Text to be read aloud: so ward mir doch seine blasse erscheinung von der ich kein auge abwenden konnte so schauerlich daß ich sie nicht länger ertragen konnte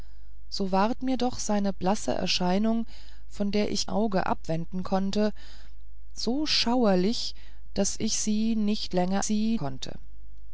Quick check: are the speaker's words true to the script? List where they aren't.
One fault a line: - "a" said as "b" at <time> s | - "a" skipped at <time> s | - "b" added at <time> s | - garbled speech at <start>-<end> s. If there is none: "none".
- "kein" skipped at 3.9 s
- "ertragen" said as "sie" at 9.2 s